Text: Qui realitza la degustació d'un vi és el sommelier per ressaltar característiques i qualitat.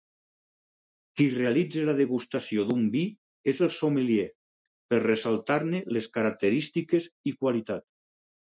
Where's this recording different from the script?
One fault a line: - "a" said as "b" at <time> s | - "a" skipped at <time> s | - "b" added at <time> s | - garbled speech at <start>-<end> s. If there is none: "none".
- "ne les" added at 5.7 s